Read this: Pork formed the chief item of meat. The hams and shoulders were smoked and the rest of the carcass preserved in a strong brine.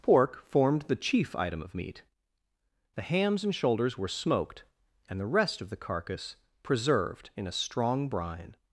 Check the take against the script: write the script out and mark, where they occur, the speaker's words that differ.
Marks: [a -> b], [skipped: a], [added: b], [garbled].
Pork formed the chief item of meat. The hams and shoulders were smoked and the rest of the carcass preserved in a strong brine.